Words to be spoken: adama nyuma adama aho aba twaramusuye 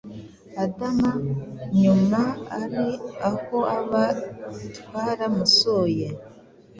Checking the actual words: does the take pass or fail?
fail